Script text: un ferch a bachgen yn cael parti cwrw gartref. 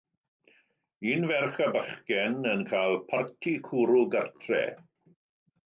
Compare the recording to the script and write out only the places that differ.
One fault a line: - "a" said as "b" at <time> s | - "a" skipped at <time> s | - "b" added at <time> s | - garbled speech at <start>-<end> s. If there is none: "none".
none